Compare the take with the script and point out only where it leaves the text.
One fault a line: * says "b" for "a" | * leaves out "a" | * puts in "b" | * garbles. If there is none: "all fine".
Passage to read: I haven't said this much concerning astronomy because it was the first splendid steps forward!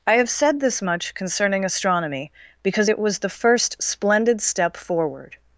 * says "have" for "haven't"
* says "step" for "steps"